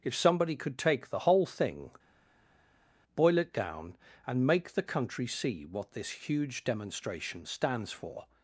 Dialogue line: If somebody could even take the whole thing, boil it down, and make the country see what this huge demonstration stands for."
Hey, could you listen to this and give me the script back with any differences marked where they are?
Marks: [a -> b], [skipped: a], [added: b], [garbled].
If somebody could [skipped: even] take the whole thing, boil it down, and make the country see what this huge demonstration stands for."